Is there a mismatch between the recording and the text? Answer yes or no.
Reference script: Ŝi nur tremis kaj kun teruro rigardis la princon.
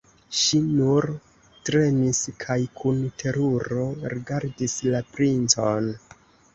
no